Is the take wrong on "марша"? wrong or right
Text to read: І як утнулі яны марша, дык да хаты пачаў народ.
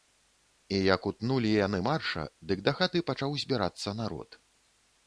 right